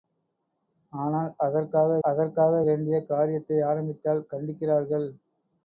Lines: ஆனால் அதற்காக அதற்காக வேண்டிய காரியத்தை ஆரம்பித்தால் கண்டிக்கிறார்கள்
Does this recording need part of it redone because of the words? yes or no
no